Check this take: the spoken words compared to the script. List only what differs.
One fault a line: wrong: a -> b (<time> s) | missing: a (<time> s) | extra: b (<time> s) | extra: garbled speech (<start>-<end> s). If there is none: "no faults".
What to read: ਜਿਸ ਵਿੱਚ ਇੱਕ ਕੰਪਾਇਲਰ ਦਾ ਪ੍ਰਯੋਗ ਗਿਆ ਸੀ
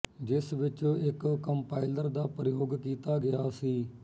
extra: ਕੀਤਾ (2.8 s)